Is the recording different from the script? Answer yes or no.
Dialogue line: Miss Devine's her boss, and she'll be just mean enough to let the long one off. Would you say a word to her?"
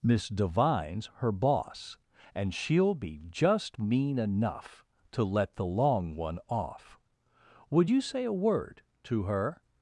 no